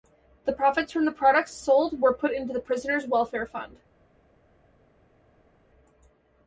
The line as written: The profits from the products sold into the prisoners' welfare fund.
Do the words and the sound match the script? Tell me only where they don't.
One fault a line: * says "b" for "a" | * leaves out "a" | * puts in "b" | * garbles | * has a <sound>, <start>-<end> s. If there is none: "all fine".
* puts in "were put"